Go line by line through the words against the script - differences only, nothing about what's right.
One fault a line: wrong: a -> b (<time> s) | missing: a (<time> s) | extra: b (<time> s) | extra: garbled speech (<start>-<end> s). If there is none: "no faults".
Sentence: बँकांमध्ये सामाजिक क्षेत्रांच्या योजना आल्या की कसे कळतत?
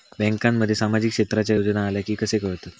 no faults